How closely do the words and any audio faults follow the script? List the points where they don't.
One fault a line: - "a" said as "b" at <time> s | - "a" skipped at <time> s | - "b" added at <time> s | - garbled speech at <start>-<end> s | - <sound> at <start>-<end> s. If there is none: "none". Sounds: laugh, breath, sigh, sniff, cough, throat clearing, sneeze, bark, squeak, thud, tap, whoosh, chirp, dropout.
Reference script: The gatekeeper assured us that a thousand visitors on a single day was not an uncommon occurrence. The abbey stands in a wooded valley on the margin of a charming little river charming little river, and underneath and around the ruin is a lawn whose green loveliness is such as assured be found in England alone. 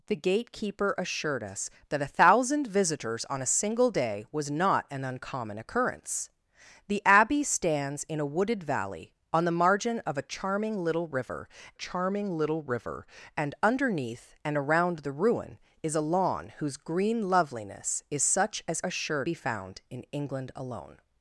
none